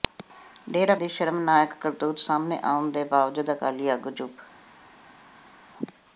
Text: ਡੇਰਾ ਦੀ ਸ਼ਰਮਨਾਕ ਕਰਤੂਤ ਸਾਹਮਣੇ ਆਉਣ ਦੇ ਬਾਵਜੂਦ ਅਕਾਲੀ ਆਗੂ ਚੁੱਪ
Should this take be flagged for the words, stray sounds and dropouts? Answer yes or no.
no